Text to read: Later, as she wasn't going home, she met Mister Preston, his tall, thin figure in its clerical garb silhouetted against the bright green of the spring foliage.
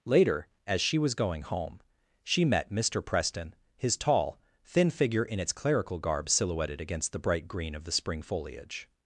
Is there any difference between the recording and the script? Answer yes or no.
yes